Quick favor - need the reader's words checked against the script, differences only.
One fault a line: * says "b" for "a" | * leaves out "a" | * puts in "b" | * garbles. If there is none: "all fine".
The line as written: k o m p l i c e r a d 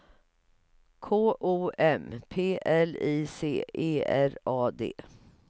all fine